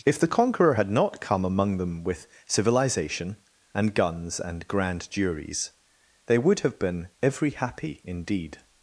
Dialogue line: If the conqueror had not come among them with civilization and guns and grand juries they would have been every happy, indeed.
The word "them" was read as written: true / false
true